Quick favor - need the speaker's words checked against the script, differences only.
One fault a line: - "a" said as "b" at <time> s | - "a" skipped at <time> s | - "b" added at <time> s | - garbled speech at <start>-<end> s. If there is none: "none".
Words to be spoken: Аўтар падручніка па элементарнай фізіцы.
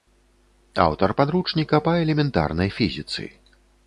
none